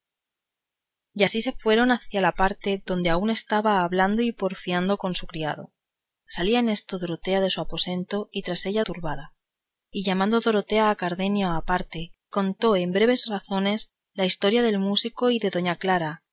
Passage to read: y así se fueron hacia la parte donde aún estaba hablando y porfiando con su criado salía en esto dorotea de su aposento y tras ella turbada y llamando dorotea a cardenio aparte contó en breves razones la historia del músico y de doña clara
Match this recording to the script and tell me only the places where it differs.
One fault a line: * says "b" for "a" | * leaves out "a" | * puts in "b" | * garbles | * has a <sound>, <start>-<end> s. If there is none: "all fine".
all fine